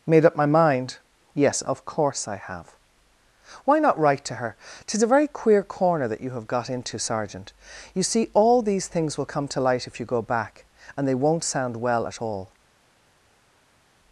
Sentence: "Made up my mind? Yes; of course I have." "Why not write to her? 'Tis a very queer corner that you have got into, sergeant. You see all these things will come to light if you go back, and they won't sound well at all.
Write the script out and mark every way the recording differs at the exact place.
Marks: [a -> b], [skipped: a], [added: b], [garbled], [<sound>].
"Made up my mind? Yes; of course I have." "Why not write to her? 'Tis a very queer corner that you have got into, sergeant. You see all these things will come to light if you go back, and they won't sound well at all.